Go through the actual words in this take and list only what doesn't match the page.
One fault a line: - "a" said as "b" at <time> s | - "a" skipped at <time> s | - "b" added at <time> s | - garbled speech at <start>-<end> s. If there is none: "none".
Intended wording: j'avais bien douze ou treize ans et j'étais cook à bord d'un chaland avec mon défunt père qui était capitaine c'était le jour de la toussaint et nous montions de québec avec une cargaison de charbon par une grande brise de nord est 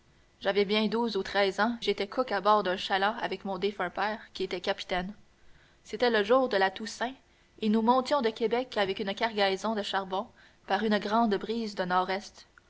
- "et" skipped at 1.8 s